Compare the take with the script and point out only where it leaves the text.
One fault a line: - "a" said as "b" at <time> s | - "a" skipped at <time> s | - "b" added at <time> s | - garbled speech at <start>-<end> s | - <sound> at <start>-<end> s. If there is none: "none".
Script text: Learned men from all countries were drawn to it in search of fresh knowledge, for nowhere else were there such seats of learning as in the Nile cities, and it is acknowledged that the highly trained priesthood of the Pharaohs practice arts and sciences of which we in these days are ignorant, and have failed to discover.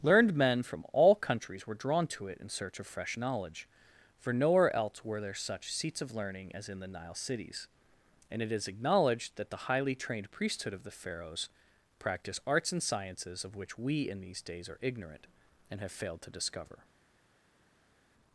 none